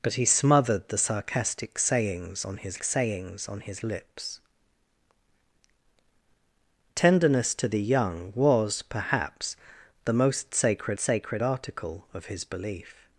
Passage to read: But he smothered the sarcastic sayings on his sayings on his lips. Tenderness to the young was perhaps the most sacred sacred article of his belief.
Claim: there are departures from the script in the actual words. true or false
false